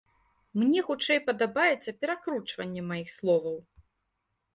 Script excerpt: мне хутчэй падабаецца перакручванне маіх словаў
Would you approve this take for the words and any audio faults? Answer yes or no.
yes